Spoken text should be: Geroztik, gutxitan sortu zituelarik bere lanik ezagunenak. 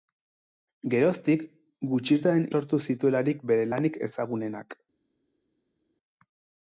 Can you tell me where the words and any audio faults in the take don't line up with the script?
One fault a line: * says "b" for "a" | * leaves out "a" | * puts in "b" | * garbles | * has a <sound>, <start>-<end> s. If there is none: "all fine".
all fine